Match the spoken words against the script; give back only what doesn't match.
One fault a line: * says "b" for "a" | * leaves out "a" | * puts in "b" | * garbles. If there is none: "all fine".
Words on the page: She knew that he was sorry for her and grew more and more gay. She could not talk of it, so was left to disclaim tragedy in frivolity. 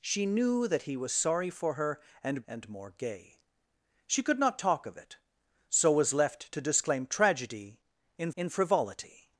* leaves out "grew more"
* puts in "in"